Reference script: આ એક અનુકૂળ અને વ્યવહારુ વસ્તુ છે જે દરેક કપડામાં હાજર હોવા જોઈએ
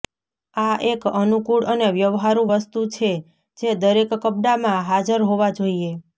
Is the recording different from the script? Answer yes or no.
no